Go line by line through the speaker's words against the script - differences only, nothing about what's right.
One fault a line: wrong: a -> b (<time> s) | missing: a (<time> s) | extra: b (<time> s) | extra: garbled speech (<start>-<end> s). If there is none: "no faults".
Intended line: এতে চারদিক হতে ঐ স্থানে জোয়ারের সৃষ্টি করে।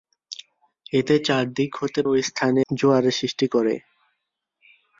no faults